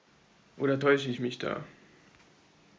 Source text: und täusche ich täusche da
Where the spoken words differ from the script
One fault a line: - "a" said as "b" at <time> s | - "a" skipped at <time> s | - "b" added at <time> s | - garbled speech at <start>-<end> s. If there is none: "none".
- "und" said as "oder" at 0.6 s
- "täusche" said as "mich" at 1.2 s